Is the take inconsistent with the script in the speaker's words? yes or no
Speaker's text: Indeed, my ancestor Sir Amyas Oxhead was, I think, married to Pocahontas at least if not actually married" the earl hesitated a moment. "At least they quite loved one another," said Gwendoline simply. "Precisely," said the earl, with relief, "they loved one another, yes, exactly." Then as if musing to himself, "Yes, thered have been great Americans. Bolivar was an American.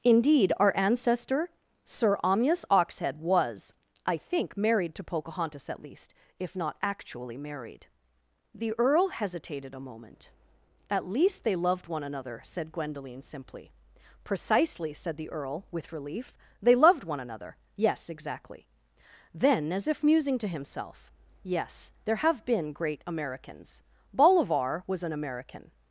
yes